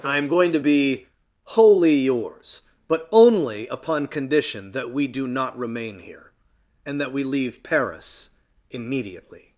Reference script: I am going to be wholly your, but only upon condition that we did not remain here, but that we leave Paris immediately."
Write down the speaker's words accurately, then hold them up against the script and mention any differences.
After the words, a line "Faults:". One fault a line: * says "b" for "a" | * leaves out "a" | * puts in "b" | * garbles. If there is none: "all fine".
I am going to be wholly yours, but only upon condition that we do not remain here, and that we leave Paris immediately."
Faults:
* says "yours" for "your"
* says "do" for "did"
* says "and" for "but"